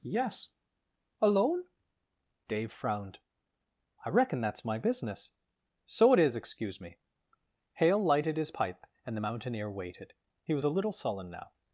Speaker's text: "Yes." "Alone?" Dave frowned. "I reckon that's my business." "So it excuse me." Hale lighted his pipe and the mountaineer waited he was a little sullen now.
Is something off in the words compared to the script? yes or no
yes